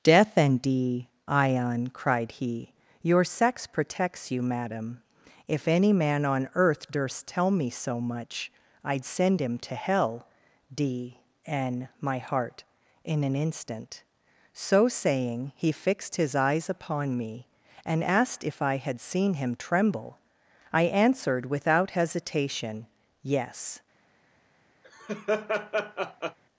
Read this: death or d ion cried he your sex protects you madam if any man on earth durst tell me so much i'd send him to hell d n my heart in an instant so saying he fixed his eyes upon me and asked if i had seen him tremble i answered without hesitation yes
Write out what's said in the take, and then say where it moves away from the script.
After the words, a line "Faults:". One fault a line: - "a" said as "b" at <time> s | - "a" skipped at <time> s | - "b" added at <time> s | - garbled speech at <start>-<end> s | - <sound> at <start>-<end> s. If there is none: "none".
death and d ion cried he your sex protects you madam if any man on earth durst tell me so much i'd send him to hell d n my heart in an instant so saying he fixed his eyes upon me and asked if i had seen him tremble i answered without hesitation yes
Faults:
- "or" said as "and" at 0.3 s
- laugh at 24.8-26.4 s